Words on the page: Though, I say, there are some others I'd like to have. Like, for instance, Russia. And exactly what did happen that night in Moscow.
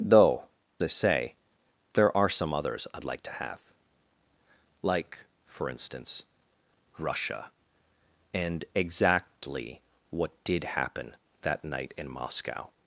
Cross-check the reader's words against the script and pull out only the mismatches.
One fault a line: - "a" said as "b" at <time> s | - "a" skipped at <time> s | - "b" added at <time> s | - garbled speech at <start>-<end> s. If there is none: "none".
none